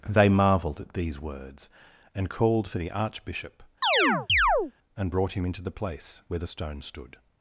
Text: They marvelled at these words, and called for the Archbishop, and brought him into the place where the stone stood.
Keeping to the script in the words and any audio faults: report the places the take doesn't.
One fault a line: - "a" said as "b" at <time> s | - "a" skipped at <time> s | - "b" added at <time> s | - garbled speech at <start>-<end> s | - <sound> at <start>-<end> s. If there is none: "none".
- chirp at 3.8-4.7 s